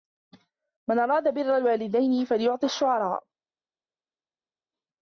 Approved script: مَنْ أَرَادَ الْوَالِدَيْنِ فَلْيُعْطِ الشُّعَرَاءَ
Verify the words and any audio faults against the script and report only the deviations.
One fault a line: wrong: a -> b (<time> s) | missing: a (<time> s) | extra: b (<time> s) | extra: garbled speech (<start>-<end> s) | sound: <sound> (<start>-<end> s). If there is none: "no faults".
extra: بِرَّ (1.3 s)